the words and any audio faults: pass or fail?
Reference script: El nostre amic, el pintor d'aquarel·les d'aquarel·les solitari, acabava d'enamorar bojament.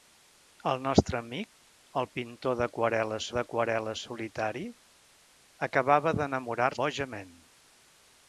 pass